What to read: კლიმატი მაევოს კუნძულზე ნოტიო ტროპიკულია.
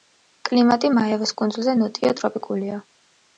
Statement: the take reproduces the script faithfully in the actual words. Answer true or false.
true